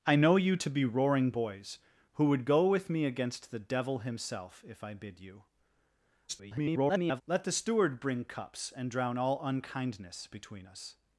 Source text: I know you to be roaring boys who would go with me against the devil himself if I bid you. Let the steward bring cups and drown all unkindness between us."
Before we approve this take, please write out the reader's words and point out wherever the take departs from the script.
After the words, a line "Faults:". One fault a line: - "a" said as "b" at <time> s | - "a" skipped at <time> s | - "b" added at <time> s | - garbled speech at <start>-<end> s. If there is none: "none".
I know you to be roaring boys who would go with me against the devil himself if I bid you. [garbled] Let the steward bring cups and drown all unkindness between us."
Faults:
- garbled speech at 6.3-7.2 s